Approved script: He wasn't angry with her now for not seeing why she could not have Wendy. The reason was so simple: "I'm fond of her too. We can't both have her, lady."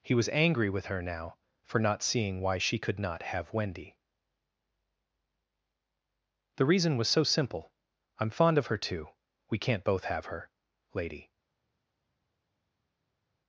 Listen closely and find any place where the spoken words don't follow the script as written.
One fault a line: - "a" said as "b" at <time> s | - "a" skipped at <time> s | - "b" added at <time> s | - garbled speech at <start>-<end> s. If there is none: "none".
- "wasn't" said as "was" at 0.1 s